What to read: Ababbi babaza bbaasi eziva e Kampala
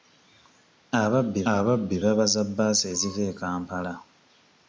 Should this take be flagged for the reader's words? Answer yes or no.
yes